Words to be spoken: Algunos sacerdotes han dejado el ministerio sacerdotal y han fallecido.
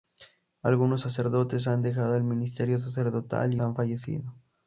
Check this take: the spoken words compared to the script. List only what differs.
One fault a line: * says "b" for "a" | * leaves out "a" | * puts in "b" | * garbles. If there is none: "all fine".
all fine